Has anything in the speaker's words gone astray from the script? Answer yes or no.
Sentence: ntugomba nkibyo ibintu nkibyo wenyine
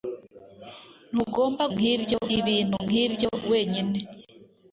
no